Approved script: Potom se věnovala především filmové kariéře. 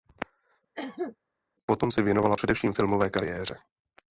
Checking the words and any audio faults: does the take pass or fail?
fail